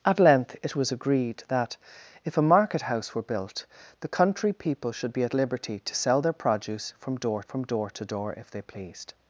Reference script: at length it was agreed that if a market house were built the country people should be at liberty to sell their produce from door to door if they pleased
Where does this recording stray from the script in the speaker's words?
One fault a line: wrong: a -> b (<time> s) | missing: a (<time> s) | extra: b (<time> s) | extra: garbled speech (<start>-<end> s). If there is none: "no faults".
extra: from door (7.4 s)